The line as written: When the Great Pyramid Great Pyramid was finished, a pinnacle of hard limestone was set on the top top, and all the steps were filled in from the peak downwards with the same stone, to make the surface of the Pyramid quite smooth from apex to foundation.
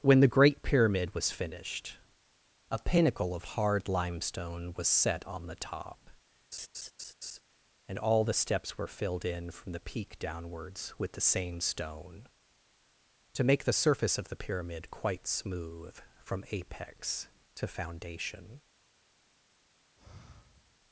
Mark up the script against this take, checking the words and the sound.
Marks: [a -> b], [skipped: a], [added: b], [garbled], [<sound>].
When the Great Pyramid [skipped: Great Pyramid] was finished, a pinnacle of hard limestone was set on the top [skipped: top,] [laugh] and all the steps were filled in from the peak downwards with the same stone, to make the surface of the Pyramid quite smooth from apex to foundation. [sigh]